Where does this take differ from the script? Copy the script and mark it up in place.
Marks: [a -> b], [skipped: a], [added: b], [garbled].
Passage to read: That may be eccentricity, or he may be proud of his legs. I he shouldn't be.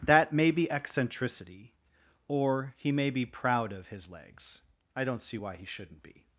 That may be eccentricity, or he may be proud of his legs. I [added: don't see why] he shouldn't be.